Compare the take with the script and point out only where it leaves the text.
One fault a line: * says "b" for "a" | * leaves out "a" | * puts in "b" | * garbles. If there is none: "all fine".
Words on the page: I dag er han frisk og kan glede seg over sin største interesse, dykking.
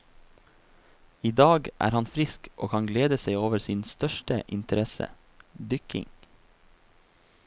all fine